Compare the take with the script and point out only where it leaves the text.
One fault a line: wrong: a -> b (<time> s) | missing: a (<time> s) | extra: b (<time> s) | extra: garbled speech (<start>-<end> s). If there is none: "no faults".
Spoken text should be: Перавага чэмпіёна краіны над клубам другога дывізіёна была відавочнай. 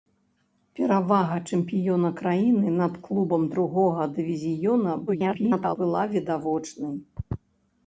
extra: garbled speech (5.1-5.8 s)